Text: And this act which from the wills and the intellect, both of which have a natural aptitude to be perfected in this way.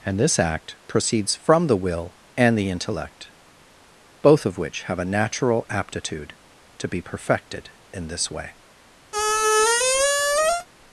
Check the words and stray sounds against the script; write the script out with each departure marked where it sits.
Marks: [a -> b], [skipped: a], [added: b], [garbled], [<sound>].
And this act [which -> proceeds] from the [wills -> will] and the intellect, both of which have a natural aptitude to be perfected in this way. [squeak]